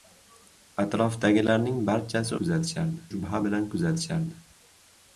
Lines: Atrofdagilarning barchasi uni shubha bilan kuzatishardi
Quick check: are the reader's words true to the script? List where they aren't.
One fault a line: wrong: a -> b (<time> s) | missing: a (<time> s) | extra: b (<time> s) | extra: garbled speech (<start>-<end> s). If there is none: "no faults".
wrong: uni -> kuzatishardi (2.4 s)